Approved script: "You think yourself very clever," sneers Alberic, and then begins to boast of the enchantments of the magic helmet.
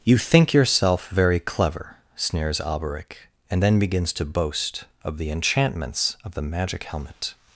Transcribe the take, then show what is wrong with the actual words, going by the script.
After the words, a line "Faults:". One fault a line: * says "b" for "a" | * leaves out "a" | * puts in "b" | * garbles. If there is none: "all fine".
"You think yourself very clever," sneers Alberic, and then begins to boast of the enchantments of the magic helmet.
Faults:
all fine